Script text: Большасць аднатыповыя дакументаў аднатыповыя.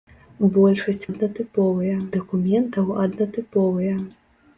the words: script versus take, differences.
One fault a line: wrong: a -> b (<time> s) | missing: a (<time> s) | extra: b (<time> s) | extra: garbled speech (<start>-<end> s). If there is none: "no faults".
no faults